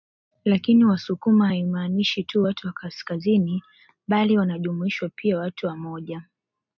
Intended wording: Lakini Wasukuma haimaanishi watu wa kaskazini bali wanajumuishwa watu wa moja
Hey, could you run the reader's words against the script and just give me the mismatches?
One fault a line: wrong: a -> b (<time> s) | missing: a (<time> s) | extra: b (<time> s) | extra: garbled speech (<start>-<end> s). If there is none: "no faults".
extra: tu (2.2 s)
extra: pia (5.2 s)